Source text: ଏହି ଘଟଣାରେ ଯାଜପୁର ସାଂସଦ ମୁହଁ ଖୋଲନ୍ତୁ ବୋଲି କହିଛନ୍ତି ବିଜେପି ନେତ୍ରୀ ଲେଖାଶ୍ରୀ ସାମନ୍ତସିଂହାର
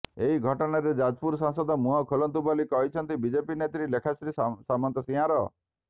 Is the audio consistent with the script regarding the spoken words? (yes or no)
yes